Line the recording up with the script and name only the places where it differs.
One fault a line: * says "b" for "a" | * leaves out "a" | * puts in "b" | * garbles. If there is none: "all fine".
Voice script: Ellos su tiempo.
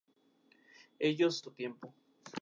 all fine